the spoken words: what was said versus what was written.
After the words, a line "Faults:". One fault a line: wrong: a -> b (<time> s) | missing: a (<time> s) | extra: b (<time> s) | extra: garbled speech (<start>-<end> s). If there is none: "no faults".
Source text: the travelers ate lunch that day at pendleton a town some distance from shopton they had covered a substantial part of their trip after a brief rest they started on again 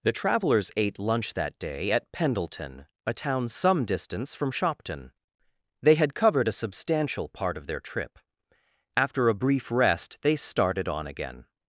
the travelers ate lunch that day at pendleton a town some distance from shopton they had covered a substantial part of their trip after a brief rest they started on again
Faults:
no faults